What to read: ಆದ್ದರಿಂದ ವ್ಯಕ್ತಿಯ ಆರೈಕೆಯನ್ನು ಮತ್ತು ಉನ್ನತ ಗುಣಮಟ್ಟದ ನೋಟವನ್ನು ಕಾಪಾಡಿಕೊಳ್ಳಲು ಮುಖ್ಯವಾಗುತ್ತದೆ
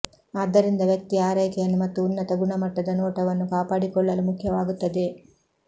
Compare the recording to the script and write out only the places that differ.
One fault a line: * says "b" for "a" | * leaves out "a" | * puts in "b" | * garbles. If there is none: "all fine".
all fine